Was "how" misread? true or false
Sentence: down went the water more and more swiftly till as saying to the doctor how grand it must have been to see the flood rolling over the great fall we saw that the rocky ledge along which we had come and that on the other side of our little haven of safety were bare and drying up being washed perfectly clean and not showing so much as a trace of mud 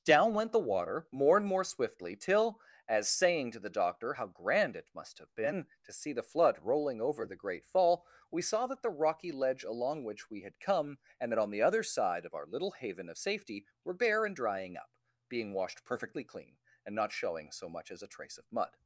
false